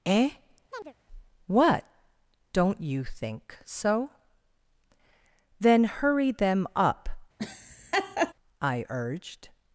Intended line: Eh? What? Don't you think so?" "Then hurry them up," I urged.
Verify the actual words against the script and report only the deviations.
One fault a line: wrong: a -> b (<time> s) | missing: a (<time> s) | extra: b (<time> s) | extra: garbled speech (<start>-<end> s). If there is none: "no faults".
no faults